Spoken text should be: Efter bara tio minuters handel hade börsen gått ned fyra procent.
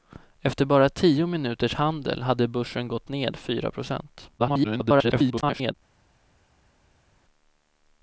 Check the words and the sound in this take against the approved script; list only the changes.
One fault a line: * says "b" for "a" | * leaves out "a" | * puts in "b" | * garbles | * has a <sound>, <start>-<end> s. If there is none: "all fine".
* garbles